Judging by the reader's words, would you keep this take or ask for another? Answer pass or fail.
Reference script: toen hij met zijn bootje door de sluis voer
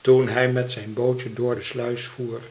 pass